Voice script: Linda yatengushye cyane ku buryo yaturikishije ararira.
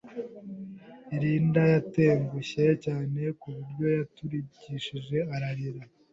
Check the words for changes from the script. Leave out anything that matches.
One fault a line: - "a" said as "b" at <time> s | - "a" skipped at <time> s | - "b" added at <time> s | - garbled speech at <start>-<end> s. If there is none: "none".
none